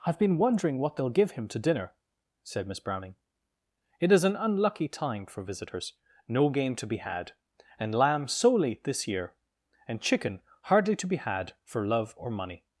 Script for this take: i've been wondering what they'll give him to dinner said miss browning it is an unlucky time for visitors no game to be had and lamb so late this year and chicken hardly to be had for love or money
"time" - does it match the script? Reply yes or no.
yes